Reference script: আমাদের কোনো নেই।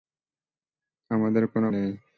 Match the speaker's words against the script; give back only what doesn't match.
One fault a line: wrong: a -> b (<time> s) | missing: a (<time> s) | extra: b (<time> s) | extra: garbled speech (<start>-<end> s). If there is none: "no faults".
no faults